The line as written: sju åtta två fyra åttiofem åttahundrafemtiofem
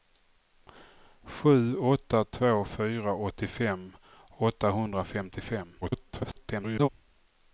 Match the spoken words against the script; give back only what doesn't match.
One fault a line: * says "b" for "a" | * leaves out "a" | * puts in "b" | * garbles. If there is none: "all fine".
* garbles